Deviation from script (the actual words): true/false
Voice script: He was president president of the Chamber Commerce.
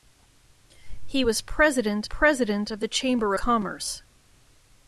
false